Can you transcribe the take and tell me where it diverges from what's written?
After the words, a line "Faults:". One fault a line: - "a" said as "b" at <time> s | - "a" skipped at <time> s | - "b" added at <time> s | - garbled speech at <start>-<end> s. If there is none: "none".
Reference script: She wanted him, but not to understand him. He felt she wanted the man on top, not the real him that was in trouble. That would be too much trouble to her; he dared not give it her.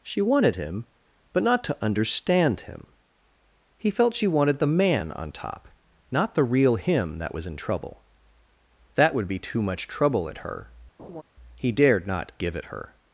She wanted him, but not to understand him. He felt she wanted the man on top, not the real him that was in trouble. That would be too much trouble at her; he dared not give it her.
Faults:
- "to" said as "at" at 10.3 s